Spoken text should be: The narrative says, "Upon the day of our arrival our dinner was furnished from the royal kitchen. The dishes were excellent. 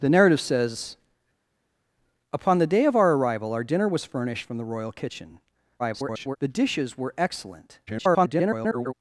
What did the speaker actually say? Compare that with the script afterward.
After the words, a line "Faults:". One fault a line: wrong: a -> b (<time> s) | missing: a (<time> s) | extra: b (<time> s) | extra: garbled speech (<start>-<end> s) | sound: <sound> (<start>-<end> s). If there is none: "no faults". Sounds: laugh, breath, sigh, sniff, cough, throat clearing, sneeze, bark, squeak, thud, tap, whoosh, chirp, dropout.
The narrative says, "Upon the day of our arrival our dinner was furnished from the royal kitchen. [garbled] The dishes were excellent. [garbled]
Faults:
extra: garbled speech (5.8-6.4 s)
extra: garbled speech (7.9-8.9 s)